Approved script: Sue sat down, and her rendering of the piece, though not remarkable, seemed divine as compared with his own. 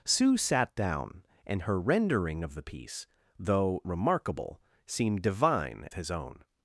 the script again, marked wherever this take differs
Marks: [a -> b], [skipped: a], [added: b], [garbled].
Sue sat down, and her rendering of the piece, though [skipped: not] remarkable, seemed divine [skipped: as compared with] his own.